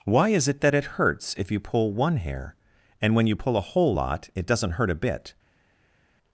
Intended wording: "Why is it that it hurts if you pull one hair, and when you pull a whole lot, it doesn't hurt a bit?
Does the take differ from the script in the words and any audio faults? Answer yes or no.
no